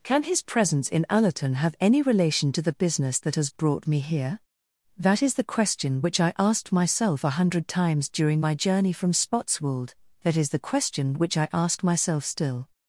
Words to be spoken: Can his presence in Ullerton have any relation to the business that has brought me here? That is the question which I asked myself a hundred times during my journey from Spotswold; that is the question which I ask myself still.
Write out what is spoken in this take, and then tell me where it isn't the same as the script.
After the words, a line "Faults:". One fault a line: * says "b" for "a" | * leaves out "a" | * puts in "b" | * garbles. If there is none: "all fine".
Can his presence in Ullerton have any relation to the business that has brought me here? That is the question which I asked myself a hundred times during my journey from Spotswold; that is the question which I ask myself still.
Faults:
all fine